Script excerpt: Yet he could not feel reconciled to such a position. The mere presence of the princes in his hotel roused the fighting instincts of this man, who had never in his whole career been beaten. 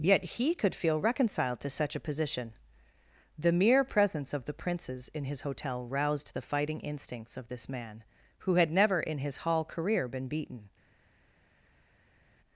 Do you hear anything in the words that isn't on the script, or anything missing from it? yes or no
yes